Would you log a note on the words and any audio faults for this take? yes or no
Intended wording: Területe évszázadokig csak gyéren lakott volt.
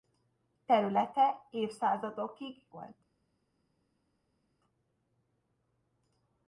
yes